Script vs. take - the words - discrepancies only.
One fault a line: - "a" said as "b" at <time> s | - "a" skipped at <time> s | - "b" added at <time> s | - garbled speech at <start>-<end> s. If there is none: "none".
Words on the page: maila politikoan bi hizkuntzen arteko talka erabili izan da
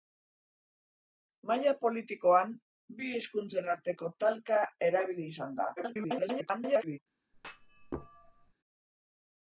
- garbled speech at 5.8-7.0 s